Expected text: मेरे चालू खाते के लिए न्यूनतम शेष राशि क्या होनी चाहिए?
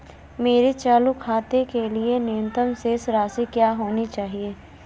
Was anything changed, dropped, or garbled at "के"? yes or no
no